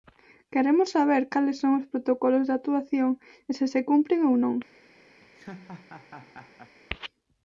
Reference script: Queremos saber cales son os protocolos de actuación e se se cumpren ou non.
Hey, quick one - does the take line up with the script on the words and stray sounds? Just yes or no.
no